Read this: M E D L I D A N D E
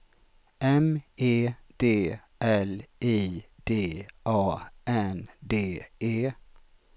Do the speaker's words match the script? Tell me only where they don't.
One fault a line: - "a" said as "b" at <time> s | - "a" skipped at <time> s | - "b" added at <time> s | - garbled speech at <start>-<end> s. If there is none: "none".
none